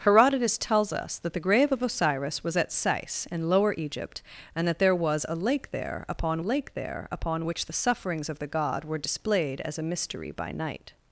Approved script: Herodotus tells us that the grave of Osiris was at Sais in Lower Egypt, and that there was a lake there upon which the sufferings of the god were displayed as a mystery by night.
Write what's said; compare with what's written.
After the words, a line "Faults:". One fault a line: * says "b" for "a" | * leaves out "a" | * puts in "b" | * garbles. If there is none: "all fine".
Herodotus tells us that the grave of Osiris was at Sais in Lower Egypt, and that there was a lake there upon lake there upon which the sufferings of the god were displayed as a mystery by night.
Faults:
* puts in "lake there upon"